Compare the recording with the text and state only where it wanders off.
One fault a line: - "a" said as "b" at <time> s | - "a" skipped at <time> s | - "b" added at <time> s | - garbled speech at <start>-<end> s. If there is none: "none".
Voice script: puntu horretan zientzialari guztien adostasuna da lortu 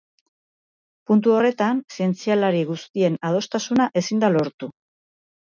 - "ezin" added at 4.0 s